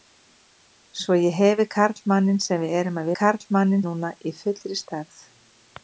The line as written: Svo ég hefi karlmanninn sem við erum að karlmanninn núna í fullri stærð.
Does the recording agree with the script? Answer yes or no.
yes